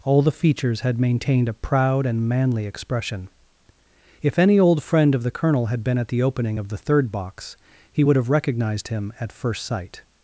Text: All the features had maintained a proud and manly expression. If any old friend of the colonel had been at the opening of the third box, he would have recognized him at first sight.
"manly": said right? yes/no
yes